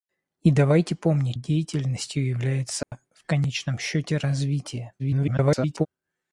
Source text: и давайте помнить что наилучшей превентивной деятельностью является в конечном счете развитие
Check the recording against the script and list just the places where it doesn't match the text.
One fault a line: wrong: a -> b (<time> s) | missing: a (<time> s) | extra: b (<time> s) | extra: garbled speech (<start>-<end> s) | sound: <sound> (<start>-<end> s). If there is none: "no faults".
missing: что наилучшей превентивной (1.4 s)
sound: dropout (2.8-2.9 s)
extra: garbled speech (5.0-5.9 s)